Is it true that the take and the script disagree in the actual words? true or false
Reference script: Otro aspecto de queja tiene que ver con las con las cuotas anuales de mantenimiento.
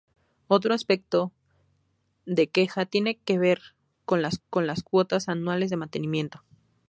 false